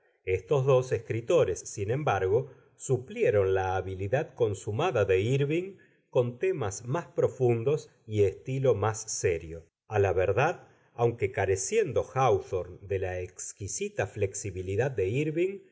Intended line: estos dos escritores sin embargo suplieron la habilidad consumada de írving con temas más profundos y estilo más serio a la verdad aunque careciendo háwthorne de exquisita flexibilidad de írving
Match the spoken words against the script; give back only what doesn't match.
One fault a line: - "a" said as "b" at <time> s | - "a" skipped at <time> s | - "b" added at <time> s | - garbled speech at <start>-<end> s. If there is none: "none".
- "la" added at 13.0 s